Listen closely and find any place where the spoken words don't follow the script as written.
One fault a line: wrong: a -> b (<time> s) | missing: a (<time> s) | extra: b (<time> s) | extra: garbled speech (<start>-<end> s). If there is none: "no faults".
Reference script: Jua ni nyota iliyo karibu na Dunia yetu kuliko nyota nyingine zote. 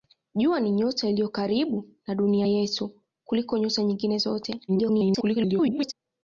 extra: garbled speech (4.7-5.9 s)